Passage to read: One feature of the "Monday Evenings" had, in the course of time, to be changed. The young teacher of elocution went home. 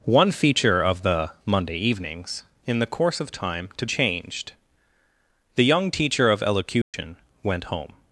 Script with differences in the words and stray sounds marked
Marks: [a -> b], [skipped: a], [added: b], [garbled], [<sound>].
One feature of the "Monday Evenings" [skipped: had,] in the course of time, to [skipped: be] changed. The young teacher of elocution [dropout] went home.